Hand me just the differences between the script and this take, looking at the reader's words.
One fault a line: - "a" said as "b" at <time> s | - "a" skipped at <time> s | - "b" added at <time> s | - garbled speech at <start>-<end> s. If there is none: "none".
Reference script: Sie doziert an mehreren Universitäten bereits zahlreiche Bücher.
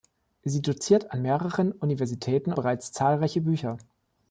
none